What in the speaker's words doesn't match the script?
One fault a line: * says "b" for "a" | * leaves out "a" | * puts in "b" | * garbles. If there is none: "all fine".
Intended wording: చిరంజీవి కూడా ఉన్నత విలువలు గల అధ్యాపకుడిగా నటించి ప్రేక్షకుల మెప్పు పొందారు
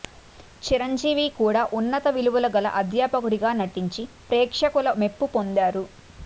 all fine